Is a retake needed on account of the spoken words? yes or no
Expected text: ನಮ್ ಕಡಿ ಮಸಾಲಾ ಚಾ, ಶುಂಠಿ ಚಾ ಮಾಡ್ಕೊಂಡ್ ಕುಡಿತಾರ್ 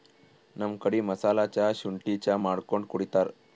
no